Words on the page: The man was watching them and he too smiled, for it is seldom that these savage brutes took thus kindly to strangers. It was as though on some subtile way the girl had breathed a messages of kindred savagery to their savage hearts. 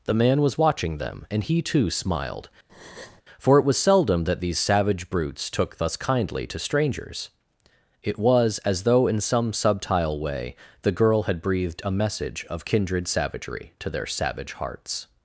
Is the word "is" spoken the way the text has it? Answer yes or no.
no